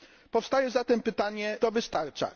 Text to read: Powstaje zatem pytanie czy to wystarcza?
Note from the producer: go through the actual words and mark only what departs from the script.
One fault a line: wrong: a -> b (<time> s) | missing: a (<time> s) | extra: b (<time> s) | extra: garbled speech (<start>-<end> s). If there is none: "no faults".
missing: czy (1.6 s)